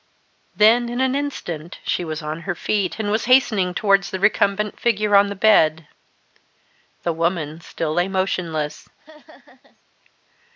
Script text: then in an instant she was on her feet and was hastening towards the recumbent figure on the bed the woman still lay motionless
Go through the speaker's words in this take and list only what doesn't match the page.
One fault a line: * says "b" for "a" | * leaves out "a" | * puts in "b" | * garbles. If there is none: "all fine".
all fine